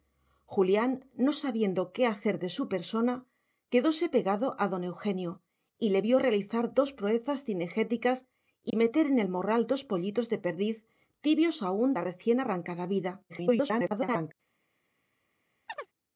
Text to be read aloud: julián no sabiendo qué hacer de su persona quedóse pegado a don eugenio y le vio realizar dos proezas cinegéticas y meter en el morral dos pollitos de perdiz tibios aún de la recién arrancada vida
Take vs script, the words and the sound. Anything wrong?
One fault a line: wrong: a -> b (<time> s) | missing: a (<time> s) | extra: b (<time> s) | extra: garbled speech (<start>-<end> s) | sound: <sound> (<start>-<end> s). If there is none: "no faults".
sound: dropout (8.7-8.7 s)
missing: de (11.9 s)
extra: garbled speech (13.3-14.3 s)
sound: chirp (15.7-15.9 s)